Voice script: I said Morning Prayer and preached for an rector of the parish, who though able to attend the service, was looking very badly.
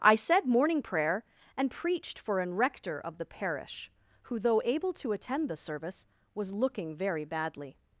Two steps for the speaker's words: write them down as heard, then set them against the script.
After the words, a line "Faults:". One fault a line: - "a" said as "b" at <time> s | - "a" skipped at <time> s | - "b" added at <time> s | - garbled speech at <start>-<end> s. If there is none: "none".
I said Morning Prayer and preached for an rector of the parish, who though able to attend the service, was looking very badly.
Faults:
none